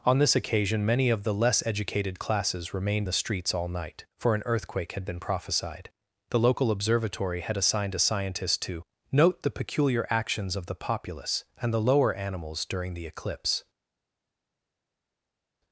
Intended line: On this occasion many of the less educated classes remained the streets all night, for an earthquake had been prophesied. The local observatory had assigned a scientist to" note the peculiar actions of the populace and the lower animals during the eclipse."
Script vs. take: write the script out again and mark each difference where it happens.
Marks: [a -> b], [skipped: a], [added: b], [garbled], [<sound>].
On this occasion many of the less educated classes remained the streets all night, for an earthquake had been prophesied. The local observatory had assigned a scientist to" note the peculiar actions of the populace and the lower animals during the eclipse."